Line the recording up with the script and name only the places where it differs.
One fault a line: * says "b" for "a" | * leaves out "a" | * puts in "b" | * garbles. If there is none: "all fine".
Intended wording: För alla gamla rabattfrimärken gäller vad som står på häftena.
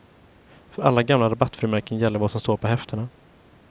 all fine